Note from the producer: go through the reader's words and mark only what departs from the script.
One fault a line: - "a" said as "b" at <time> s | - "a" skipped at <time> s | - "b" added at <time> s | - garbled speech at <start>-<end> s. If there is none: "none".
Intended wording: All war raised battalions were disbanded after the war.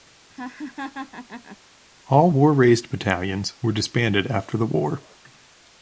none